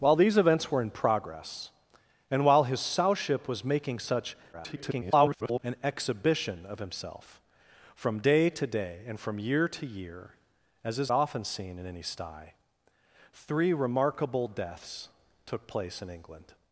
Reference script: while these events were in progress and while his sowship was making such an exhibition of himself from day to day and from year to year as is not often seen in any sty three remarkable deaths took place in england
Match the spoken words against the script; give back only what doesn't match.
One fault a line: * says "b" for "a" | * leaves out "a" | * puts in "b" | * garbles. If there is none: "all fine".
* garbles
* leaves out "not"